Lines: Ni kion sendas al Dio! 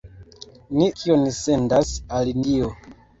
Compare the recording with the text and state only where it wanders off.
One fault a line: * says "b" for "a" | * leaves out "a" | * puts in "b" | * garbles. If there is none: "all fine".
all fine